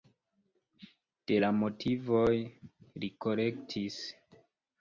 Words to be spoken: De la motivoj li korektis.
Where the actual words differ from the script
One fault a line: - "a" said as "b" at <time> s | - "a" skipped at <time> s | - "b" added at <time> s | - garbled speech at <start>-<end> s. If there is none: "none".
none